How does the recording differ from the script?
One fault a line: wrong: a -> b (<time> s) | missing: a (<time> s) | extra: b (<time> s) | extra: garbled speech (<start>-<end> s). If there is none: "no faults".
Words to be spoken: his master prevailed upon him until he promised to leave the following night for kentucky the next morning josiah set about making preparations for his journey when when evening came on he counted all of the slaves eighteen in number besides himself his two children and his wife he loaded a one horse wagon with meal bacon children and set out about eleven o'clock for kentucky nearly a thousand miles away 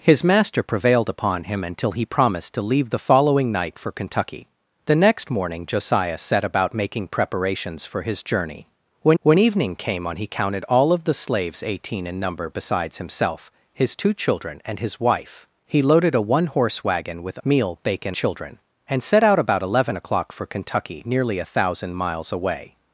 no faults